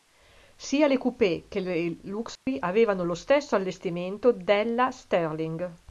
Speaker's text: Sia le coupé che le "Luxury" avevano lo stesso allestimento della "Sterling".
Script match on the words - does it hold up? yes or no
yes